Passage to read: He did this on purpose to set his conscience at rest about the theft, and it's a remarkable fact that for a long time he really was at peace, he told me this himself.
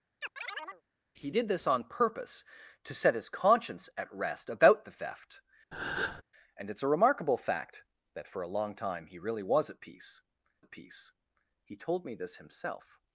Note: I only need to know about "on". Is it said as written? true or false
true